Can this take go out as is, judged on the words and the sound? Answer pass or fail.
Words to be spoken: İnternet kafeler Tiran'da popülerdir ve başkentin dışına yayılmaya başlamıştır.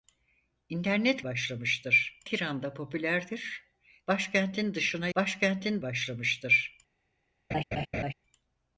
fail